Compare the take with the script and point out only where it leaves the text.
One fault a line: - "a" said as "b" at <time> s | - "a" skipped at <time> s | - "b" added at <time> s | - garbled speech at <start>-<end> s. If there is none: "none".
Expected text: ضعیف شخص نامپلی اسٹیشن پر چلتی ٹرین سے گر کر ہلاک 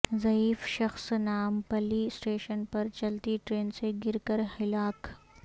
none